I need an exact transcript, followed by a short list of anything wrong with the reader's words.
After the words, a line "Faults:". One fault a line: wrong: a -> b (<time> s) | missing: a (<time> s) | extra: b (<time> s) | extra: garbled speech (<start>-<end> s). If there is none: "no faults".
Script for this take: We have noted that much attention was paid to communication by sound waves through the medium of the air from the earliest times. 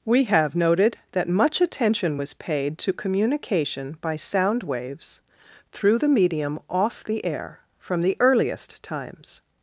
We have noted that much attention was paid to communication by sound waves through the medium off the air from the earliest times.
Faults:
wrong: of -> off (6.7 s)